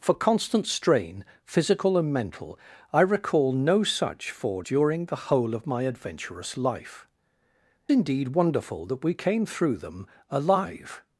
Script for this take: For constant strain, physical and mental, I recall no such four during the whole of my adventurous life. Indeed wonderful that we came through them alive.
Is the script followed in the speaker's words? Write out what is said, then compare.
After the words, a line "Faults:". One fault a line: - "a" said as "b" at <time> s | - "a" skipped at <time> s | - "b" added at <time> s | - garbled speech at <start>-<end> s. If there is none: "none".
For constant strain, physical and mental, I recall no such four during the whole of my adventurous life. Indeed wonderful that we came through them alive.
Faults:
none